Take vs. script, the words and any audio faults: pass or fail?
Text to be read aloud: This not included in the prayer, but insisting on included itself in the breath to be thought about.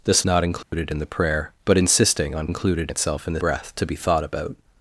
fail